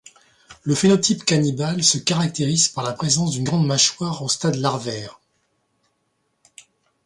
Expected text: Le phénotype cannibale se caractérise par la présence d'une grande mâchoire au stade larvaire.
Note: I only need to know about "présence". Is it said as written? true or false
true